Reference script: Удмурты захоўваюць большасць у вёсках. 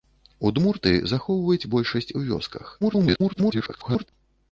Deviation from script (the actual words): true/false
true